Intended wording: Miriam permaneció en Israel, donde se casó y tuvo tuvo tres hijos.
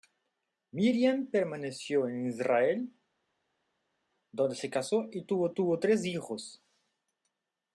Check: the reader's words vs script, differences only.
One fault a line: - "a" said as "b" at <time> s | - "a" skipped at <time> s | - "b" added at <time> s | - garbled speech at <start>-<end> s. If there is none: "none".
none